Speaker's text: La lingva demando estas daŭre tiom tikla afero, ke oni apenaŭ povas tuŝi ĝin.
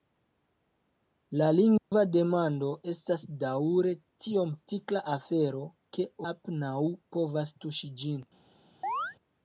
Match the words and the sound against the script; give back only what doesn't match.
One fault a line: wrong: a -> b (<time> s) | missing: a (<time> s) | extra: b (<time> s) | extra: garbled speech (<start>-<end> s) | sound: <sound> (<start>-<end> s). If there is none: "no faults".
sound: dropout (1.8-1.9 s)
missing: oni (6.1 s)
sound: chirp (8.8-9.2 s)